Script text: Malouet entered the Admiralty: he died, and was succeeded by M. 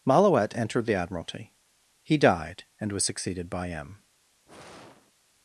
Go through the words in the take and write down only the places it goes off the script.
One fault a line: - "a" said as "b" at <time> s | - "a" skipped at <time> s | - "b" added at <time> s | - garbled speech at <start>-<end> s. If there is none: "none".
none